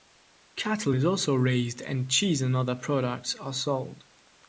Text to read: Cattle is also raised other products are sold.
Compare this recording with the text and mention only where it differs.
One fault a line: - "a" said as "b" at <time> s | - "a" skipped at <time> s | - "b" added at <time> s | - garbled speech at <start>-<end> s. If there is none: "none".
- "and cheese and" added at 1.8 s